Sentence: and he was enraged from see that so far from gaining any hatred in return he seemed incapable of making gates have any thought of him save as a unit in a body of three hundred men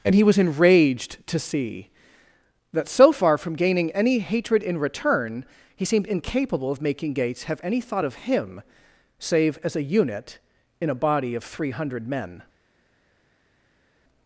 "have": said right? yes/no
yes